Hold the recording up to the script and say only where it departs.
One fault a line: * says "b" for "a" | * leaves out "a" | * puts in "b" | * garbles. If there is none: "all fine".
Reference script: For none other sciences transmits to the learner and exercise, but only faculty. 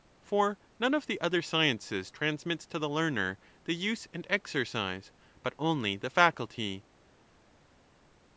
* puts in "of the"
* puts in "the use"
* puts in "the"